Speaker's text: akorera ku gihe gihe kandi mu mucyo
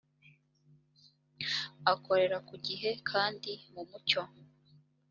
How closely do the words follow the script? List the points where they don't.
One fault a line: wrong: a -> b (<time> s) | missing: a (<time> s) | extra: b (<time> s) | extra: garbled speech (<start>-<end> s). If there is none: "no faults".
missing: gihe (2.9 s)